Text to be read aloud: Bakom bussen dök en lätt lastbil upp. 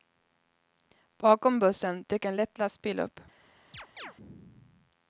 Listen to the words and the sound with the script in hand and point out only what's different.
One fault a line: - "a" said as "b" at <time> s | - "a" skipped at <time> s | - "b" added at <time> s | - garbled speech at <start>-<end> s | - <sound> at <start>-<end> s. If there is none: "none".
- chirp at 3.7-4.1 s